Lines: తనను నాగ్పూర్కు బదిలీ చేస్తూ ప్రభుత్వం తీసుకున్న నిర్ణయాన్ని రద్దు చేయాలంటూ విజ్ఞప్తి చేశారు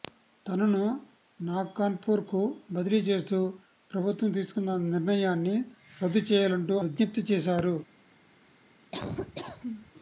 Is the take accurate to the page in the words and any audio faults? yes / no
no